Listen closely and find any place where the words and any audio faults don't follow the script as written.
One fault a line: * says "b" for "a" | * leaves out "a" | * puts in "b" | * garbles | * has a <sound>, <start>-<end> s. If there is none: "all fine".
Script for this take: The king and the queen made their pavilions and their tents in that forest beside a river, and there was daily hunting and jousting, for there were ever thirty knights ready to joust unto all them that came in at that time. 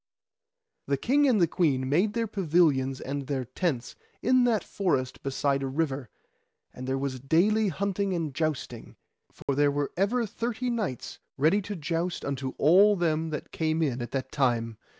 * has a dropout, 9.4-9.5 s